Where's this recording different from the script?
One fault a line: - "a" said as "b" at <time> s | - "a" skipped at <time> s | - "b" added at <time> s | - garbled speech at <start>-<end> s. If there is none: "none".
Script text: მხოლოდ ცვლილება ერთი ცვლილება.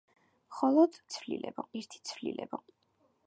none